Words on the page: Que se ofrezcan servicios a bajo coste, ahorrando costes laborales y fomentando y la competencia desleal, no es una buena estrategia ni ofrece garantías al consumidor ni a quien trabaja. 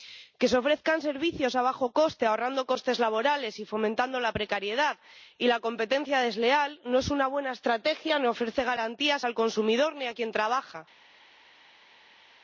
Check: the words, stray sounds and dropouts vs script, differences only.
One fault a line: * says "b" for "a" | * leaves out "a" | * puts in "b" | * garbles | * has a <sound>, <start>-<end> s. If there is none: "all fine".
* puts in "la precariedad"